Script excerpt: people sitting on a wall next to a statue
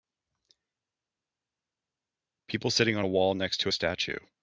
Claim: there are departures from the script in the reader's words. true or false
false